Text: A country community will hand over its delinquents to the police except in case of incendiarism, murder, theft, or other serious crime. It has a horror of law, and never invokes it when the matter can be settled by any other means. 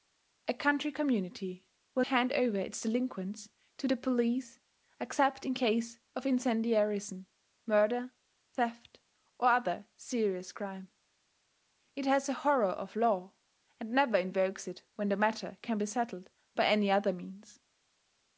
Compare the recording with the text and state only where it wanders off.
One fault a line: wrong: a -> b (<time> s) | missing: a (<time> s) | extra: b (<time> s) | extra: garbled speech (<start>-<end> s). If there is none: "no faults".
no faults